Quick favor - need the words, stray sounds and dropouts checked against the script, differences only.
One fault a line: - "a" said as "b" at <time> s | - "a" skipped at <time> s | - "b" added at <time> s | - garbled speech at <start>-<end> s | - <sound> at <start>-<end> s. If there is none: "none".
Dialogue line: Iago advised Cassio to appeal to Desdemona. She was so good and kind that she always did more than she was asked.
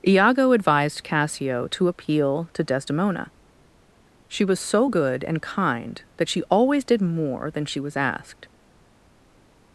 none